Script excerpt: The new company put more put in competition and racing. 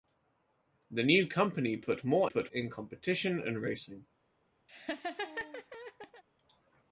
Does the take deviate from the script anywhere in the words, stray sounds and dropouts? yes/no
yes